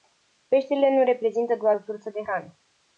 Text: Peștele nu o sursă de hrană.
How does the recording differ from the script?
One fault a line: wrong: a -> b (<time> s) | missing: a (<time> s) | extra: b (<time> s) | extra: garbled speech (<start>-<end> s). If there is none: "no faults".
extra: reprezintă doar (1.0 s)